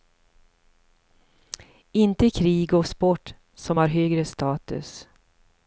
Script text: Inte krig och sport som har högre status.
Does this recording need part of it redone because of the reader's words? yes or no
no